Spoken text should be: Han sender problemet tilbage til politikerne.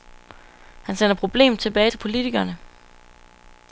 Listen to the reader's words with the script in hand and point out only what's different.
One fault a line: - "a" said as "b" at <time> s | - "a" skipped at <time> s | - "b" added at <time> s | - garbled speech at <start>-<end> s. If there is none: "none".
none